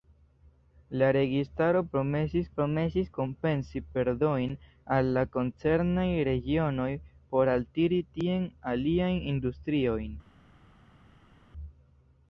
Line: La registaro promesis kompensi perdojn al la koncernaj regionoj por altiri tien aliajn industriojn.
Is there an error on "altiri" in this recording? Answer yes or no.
no